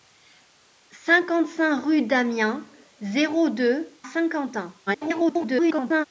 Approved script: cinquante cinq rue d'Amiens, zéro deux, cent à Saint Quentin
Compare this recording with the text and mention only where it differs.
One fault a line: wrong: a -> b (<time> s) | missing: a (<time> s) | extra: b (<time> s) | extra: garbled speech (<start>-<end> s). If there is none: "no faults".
missing: cent à (4.0 s)
extra: garbled speech (4.9-6.0 s)